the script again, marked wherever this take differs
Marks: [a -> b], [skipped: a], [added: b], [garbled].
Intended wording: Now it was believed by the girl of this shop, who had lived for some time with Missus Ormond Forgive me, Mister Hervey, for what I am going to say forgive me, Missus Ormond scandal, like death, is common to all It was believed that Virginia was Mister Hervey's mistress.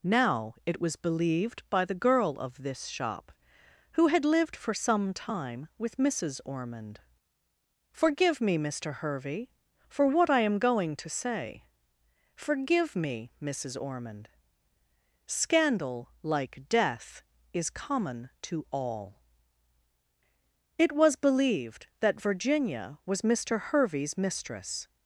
Now it was believed by the girl of this shop, who had lived for some time with Missus Ormond Forgive me, Mister Hervey, for what I am going to say forgive me, Missus Ormond scandal, like death, is common to all It was believed that Virginia was Mister Hervey's mistress.